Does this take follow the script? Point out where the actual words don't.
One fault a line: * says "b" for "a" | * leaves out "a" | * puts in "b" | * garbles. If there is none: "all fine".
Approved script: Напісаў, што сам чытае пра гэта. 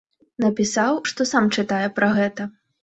all fine